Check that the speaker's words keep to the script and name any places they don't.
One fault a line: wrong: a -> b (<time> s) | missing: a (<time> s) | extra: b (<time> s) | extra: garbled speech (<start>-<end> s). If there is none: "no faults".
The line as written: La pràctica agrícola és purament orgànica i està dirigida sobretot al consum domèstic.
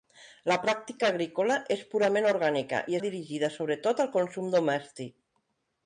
missing: està (3.0 s)